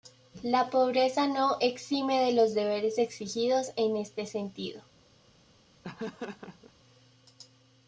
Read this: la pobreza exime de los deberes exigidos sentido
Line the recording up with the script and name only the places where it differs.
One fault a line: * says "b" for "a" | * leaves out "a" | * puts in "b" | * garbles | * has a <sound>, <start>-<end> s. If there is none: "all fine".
* puts in "no"
* puts in "en este"
* has a laugh, 5.8-6.7 s